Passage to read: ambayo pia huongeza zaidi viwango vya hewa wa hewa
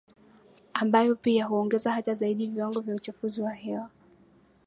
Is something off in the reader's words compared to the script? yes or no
yes